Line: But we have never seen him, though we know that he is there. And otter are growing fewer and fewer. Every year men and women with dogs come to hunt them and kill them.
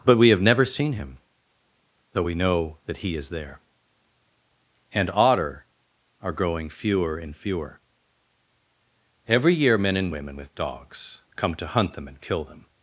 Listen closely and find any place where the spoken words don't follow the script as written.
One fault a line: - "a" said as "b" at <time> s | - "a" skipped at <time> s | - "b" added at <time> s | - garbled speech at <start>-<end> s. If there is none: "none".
none